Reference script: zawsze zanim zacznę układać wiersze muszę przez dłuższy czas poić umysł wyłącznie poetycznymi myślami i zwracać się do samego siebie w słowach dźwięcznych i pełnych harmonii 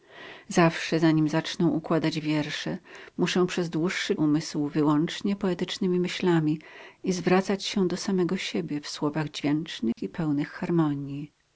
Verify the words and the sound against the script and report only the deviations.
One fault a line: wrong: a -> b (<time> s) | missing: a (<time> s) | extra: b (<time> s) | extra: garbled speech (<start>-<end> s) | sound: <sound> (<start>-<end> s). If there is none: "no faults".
missing: czas poić (4.2 s)
sound: dropout (9.9-10.0 s)